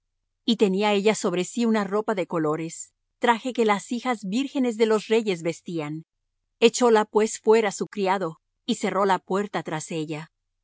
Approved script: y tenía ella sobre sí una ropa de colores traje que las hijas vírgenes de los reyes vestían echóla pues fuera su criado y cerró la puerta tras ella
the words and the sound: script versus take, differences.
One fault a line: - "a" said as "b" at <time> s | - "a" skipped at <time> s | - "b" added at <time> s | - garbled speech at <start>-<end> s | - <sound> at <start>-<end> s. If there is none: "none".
none